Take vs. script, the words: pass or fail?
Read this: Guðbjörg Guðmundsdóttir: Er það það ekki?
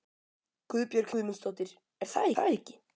pass